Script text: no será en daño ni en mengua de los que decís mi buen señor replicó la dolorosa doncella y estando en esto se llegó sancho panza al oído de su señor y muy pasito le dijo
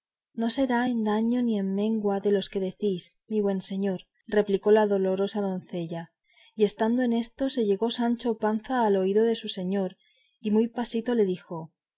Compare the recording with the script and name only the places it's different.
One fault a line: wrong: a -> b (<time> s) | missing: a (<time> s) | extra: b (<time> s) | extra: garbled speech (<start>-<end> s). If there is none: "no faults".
no faults